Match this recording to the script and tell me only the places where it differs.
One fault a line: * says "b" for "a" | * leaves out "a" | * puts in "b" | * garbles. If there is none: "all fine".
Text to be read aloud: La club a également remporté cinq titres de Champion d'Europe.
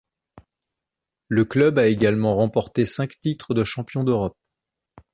* says "Le" for "La"